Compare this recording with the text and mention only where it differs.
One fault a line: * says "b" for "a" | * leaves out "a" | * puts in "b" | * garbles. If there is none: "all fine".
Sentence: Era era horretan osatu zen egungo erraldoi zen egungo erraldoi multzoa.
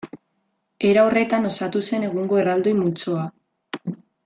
* leaves out "era"
* leaves out "zen egungo erraldoi"